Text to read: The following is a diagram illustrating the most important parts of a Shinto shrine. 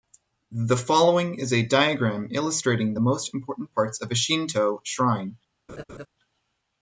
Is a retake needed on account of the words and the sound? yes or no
yes